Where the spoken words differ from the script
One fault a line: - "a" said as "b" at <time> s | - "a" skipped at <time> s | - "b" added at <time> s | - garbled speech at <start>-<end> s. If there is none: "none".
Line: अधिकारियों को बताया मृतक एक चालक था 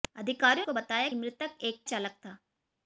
none